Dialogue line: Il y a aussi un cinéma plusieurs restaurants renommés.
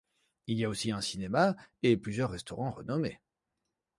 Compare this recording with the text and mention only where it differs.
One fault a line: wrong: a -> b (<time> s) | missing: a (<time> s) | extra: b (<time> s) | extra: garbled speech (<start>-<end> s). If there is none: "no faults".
extra: et (1.8 s)